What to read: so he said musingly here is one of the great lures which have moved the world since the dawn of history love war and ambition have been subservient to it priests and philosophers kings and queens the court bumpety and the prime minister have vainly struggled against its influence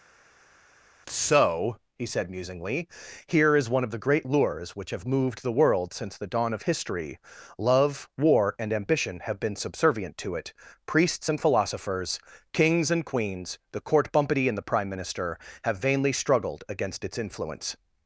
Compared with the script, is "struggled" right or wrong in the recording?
right